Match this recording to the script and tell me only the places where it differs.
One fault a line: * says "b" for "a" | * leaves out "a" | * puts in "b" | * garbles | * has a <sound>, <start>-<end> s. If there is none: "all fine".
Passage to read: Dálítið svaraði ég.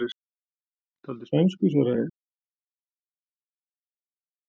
* puts in "spænsku"